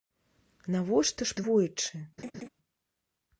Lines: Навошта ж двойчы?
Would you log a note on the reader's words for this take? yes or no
no